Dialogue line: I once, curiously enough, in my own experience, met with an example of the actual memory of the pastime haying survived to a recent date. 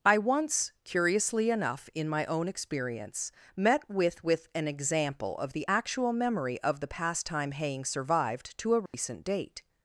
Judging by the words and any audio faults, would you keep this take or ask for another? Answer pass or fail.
fail